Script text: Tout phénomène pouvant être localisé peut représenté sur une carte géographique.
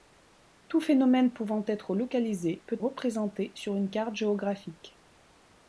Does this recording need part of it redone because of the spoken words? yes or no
no